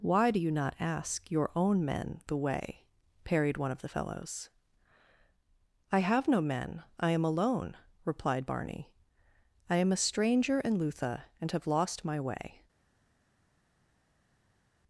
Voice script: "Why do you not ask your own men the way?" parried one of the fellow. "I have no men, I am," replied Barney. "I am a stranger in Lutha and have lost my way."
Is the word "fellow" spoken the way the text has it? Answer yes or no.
no